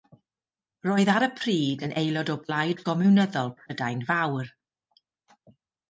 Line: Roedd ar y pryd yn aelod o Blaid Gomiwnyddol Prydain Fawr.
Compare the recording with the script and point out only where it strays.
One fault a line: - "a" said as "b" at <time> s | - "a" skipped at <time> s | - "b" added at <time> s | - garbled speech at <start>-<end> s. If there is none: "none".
none